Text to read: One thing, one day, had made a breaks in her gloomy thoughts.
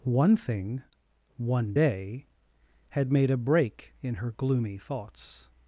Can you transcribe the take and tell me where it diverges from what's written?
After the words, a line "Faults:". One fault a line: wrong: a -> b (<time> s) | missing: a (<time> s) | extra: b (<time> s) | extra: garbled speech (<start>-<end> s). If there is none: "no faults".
One thing, one day, had made a break in her gloomy thoughts.
Faults:
wrong: breaks -> break (3.4 s)